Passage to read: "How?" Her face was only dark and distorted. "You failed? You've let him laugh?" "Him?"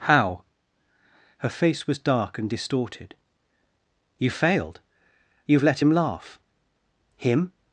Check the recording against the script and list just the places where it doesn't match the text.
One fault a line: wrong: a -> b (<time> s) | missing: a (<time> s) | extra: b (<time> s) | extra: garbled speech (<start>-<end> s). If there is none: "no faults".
missing: only (2.0 s)